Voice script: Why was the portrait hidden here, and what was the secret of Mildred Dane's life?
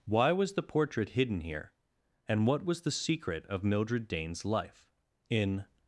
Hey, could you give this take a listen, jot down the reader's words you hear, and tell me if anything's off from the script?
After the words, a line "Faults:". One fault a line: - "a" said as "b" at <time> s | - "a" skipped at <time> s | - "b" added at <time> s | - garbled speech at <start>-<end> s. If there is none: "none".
Why was the portrait hidden here, and what was the secret of Mildred Dane's life? In
Faults:
- "In" added at 5.3 s